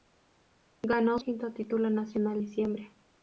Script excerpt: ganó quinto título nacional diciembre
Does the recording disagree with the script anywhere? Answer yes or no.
no